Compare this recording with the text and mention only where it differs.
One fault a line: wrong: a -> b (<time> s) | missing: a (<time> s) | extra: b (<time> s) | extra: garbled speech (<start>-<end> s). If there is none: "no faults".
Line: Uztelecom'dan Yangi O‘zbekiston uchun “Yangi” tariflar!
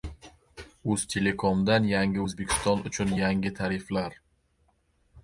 no faults